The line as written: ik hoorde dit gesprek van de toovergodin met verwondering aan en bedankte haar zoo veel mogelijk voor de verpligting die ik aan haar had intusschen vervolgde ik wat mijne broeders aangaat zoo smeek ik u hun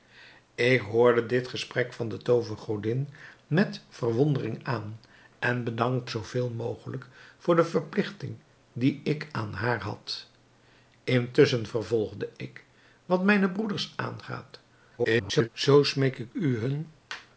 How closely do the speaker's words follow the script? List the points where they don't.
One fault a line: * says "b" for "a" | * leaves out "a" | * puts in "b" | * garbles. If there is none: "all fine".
* leaves out "haar"
* garbles